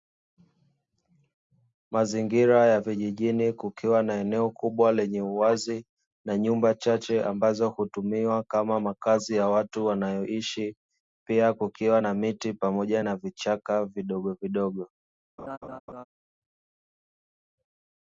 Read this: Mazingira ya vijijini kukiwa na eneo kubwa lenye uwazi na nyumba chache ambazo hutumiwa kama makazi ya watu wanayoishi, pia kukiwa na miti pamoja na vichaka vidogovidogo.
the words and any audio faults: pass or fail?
fail